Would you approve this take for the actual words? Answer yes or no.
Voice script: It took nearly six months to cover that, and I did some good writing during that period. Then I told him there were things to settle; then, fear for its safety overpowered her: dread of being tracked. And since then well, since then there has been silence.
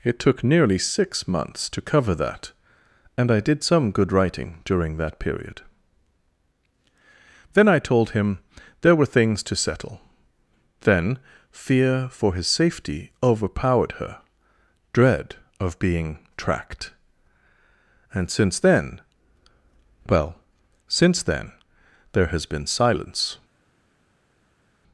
no